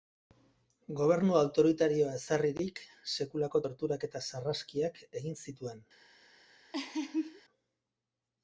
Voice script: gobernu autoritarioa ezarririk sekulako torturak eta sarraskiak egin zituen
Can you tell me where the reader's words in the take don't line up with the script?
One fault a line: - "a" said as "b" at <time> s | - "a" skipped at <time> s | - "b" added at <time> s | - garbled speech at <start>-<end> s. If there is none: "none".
none